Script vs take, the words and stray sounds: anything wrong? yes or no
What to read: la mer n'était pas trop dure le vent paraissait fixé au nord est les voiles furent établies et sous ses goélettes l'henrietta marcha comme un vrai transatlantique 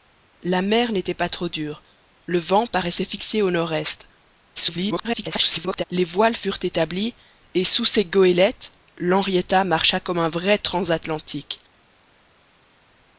yes